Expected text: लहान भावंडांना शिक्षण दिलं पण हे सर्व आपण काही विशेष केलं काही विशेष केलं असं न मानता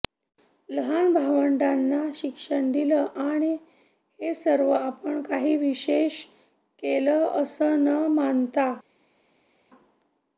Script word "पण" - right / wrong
wrong